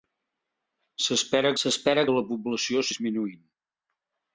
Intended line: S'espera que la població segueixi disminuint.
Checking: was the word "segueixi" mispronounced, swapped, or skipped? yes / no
yes